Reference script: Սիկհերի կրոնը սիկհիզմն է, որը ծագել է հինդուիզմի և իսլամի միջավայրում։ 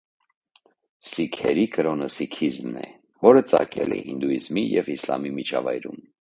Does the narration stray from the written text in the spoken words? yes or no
no